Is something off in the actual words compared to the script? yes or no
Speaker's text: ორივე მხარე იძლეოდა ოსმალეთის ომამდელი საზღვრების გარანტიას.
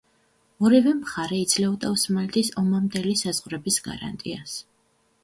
no